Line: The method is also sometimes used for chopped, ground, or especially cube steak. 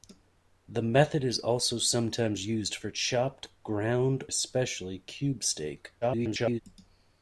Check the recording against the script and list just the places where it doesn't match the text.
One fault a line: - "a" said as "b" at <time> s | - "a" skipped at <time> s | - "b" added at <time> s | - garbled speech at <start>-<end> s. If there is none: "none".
- "or" skipped at 4.2 s
- garbled speech at 6.0-6.6 s